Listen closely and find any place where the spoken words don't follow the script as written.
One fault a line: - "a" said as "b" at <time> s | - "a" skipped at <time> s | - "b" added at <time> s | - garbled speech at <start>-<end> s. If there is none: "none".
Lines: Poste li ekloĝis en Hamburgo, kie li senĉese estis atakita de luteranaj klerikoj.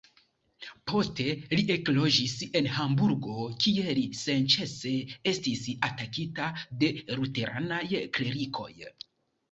none